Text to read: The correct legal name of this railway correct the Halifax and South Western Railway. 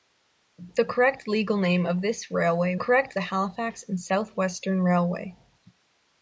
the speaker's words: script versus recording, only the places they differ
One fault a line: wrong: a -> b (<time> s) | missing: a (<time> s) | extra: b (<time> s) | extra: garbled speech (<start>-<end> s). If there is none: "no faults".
no faults